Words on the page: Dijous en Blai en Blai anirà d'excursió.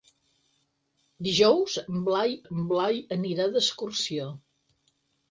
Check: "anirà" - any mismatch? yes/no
no